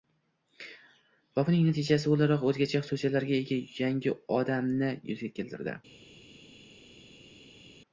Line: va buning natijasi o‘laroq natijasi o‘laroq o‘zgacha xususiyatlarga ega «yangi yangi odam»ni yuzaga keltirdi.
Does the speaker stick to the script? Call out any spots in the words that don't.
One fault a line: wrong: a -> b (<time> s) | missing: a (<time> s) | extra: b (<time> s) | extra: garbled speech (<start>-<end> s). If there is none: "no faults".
missing: natijasi o‘laroq (2.5 s)
missing: yangi (4.2 s)